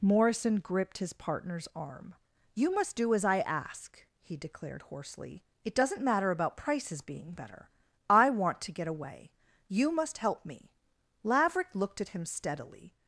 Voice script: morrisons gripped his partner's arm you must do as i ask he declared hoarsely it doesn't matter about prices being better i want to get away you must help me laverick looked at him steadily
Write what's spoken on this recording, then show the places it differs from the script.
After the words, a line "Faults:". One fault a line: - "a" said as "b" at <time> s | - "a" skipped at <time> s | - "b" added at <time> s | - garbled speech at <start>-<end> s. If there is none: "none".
morrison gripped his partner's arm you must do as i ask he declared hoarsely it doesn't matter about prices being better i want to get away you must help me laverick looked at him steadily
Faults:
- "morrisons" said as "morrison" at 0.0 s